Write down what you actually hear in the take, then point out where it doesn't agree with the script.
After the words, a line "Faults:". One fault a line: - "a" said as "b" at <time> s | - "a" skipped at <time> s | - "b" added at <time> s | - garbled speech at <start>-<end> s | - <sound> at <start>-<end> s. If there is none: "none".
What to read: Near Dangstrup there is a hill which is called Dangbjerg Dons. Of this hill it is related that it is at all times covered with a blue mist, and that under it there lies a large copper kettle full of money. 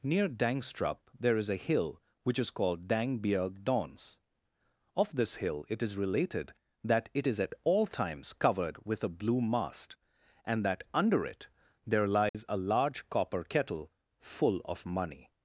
Near Dangstrup there is a hill which is called Dangbjerg Dons. Of this hill it is related that it is at all times covered with a blue mast, and that under it there lies a large copper kettle full of money.
Faults:
- "mist" said as "mast" at 9.4 s
- dropout at 12.3-12.3 s